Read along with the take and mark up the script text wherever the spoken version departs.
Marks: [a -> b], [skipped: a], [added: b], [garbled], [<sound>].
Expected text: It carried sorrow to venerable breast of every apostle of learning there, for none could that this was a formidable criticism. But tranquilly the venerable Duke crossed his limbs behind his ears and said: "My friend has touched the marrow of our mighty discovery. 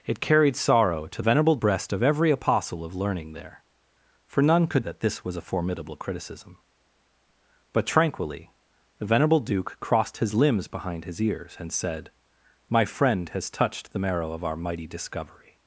It carried sorrow to venerable breast of every apostle of learning there, for none could that this was a formidable criticism. But tranquilly the venerable Duke crossed his limbs behind his ears and said: "My friend has touched the marrow of our mighty discovery.